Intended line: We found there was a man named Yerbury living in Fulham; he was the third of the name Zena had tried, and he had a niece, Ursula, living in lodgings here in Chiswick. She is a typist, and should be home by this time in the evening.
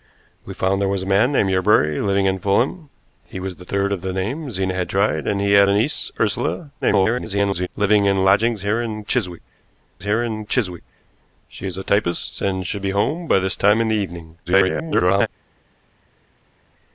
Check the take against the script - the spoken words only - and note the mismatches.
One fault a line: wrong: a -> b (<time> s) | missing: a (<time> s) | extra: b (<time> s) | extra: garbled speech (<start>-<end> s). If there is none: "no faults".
extra: garbled speech (6.8-7.7 s)
extra: here in Chiswick (10.0 s)
extra: garbled speech (14.5-15.3 s)